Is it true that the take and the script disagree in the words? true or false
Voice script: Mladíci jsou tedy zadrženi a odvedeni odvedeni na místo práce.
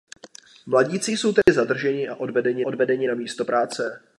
false